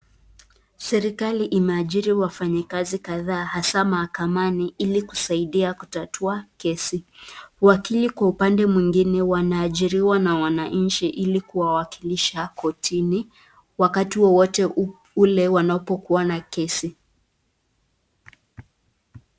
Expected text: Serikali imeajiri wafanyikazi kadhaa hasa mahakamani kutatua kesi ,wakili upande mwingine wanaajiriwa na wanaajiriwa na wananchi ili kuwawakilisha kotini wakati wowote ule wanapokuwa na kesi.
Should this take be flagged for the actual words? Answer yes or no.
yes